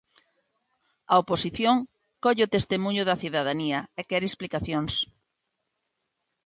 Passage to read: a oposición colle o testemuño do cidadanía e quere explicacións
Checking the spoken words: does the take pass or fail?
fail